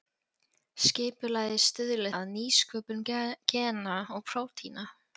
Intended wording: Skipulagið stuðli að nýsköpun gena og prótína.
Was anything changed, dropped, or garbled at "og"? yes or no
no